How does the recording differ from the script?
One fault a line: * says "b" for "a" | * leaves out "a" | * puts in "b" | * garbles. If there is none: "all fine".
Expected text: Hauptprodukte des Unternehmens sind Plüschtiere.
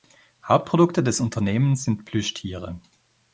all fine